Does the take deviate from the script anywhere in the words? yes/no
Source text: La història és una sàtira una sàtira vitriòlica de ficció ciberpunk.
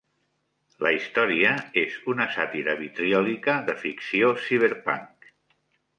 yes